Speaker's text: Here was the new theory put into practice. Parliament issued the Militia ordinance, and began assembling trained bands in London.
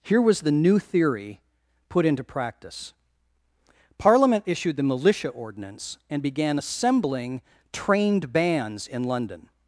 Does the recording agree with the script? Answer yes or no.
yes